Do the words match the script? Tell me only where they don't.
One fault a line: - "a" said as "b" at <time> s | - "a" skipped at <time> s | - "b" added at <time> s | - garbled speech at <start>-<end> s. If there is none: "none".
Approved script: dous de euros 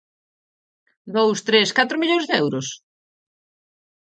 - "tres catro millóns" added at 1.5 s